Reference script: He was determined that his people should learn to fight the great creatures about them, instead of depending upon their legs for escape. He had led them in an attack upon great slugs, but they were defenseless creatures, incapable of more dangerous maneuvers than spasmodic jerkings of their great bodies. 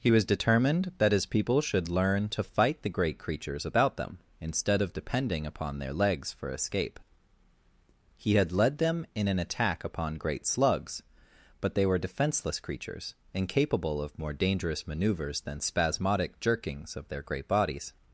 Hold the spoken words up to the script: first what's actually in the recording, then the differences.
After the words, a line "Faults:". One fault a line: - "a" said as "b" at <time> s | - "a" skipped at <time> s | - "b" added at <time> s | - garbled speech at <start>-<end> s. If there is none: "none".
He was determined that his people should learn to fight the great creatures about them, instead of depending upon their legs for escape. He had led them in an attack upon great slugs, but they were defenseless creatures, incapable of more dangerous maneuvers than spasmodic jerkings of their great bodies.
Faults:
none